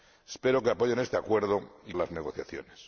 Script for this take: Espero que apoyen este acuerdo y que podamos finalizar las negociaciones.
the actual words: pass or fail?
fail